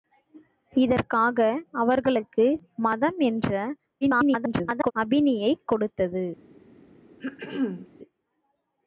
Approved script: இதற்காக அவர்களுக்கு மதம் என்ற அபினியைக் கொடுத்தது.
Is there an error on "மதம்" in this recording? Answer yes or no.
no